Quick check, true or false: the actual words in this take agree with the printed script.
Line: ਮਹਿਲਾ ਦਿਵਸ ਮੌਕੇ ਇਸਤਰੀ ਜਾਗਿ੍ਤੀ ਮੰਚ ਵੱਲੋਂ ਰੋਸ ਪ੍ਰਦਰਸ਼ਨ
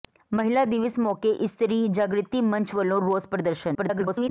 false